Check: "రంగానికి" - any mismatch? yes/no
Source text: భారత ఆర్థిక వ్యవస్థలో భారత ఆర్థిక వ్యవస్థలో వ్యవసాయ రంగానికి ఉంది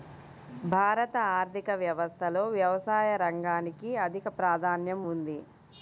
yes